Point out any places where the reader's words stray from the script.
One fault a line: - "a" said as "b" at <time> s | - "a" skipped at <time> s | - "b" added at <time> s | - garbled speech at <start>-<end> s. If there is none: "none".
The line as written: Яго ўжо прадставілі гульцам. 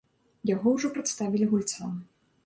none